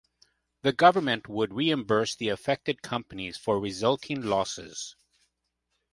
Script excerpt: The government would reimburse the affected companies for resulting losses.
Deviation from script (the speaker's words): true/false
false